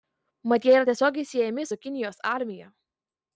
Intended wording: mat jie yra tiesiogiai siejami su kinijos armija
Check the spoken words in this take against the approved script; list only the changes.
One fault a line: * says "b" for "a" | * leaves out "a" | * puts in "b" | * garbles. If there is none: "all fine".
all fine